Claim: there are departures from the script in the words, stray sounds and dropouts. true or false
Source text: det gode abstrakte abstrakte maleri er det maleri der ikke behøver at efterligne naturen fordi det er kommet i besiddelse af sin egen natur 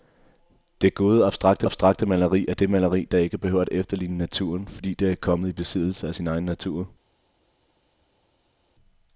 false